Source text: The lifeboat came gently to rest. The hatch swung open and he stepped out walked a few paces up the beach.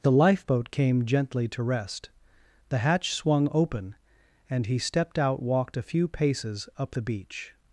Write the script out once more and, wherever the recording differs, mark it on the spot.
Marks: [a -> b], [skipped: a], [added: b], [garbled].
The lifeboat came gently to rest. The hatch swung open and he stepped out walked a few paces up the beach.